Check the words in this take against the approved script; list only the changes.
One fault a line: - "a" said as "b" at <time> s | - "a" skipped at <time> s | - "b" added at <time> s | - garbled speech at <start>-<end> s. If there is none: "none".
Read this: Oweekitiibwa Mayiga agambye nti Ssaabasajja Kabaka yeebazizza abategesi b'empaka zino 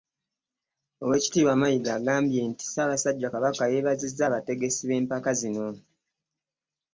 none